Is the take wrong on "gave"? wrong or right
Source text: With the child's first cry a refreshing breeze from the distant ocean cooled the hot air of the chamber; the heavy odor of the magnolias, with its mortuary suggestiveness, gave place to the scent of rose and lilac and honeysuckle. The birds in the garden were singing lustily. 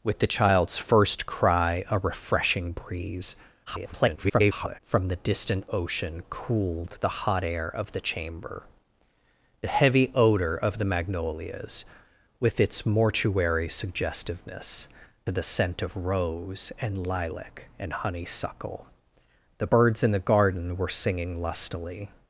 wrong